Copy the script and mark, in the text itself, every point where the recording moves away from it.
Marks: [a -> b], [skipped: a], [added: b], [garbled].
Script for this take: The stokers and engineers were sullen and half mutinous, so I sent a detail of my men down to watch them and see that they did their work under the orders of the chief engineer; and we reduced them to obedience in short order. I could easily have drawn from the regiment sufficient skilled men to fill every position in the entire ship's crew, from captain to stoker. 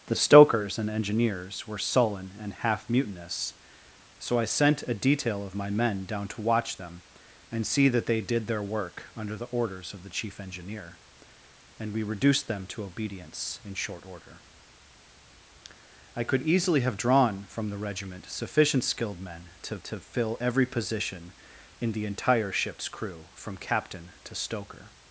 The stokers and engineers were sullen and half mutinous, so I sent a detail of my men down to watch them and see that they did their work under the orders of the chief engineer; and we reduced them to obedience in short order. I could easily have drawn from the regiment sufficient skilled men to [added: to] fill every position in the entire ship's crew, from captain to stoker.